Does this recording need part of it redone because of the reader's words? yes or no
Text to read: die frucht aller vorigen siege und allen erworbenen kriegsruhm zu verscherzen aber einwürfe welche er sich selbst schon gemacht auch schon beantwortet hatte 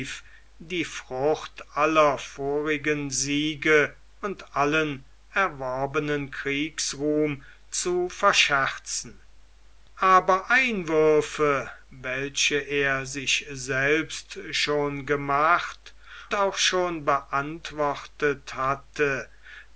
no